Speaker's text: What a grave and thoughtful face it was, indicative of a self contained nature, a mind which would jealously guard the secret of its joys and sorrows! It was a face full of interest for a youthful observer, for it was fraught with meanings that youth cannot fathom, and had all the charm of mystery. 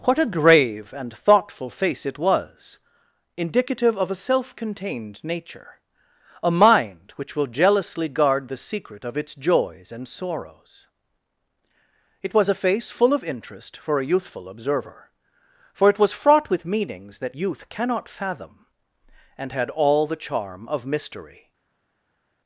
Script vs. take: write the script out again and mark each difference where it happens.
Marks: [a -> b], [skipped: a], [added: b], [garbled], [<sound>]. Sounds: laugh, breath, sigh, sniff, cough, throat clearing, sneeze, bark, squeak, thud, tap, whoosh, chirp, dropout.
What a grave and thoughtful face it was, indicative of a self contained nature, a mind which [would -> will] jealously guard the secret of its joys and sorrows! It was a face full of interest for a youthful observer, for it was fraught with meanings that youth cannot fathom, and had all the charm of mystery.